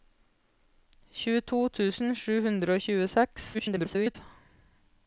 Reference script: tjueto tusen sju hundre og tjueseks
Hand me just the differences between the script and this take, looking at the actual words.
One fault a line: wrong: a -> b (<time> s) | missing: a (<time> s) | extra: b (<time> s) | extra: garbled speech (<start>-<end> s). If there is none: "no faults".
extra: garbled speech (3.5-4.2 s)